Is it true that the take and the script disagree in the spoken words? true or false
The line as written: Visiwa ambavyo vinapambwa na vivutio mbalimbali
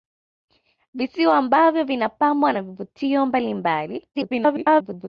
true